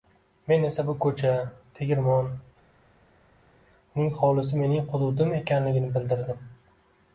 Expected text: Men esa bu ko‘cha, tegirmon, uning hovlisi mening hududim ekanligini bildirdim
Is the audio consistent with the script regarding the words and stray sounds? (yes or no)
yes